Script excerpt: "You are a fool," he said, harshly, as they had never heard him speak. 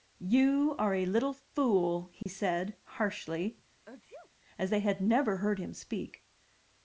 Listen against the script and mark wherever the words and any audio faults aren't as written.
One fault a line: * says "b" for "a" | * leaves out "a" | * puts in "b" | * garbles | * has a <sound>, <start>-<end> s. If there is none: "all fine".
* puts in "little"
* has a dropout, 2.2-2.3 s
* has a sneeze, 3.8-4.3 s